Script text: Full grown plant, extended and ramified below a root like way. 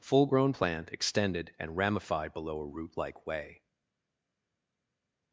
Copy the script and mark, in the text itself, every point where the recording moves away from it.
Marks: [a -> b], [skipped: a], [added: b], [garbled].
Full grown plant, extended and ramified below a root like way.